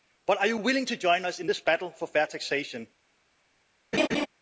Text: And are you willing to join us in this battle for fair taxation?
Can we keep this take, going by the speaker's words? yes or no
no